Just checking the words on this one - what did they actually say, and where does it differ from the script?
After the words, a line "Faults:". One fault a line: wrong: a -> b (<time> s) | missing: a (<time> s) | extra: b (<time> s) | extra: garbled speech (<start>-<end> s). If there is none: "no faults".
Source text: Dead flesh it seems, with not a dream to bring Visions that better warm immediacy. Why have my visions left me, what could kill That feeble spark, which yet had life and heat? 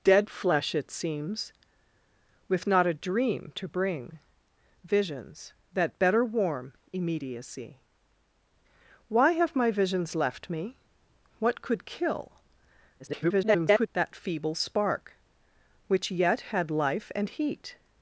Dead flesh it seems, with not a dream to bring Visions that better warm immediacy. Why have my visions left me, what could kill [garbled] That feeble spark, which yet had life and heat?
Faults:
extra: garbled speech (13.0-13.9 s)